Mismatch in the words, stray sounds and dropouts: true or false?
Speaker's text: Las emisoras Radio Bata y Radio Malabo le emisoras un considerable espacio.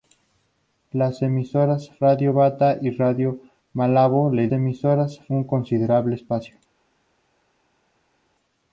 false